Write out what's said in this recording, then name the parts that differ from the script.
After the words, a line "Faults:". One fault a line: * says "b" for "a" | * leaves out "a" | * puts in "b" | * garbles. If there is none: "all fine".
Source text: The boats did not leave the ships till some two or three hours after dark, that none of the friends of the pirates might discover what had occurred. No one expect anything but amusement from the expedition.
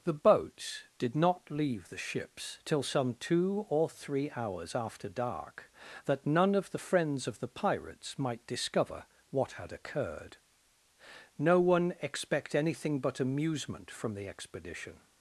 The boats did not leave the ships till some two or three hours after dark, that none of the friends of the pirates might discover what had occurred. No one expect anything but amusement from the expedition.
Faults:
all fine